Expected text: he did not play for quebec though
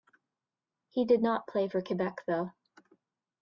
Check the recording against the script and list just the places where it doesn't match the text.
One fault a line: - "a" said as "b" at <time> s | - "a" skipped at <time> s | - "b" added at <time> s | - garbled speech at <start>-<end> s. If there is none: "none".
none